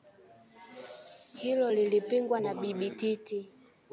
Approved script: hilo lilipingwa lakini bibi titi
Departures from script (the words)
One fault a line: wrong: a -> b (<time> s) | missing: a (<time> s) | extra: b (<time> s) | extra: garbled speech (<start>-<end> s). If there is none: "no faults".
wrong: lakini -> na (2.4 s)